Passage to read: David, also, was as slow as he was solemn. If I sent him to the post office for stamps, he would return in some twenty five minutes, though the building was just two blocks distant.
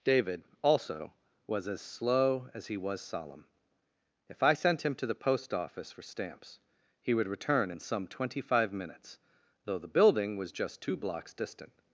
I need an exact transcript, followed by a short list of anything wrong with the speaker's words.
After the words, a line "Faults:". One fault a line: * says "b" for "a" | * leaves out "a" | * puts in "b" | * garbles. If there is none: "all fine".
David, also, was as slow as he was solemn. If I sent him to the post office for stamps, he would return in some twenty five minutes, though the building was just two blocks distant.
Faults:
all fine